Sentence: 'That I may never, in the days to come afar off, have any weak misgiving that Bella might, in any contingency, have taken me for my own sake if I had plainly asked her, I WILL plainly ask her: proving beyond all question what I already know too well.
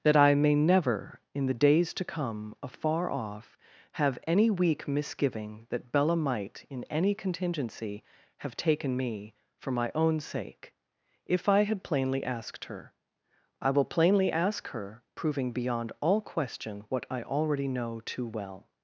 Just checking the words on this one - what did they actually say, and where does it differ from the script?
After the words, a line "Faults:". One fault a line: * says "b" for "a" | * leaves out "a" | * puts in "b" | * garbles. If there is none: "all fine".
'That I may never, in the days to come afar off, have any weak misgiving that Bella might, in any contingency, have taken me for my own sake if I had plainly asked her, I WILL plainly ask her: proving beyond all question what I already know too well.
Faults:
all fine